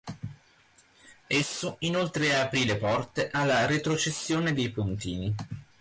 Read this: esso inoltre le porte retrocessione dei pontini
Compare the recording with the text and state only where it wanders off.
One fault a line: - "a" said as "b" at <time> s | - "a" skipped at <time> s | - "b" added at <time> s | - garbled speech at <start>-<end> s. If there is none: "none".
- "aprì" added at 2.4 s
- "alla" added at 3.3 s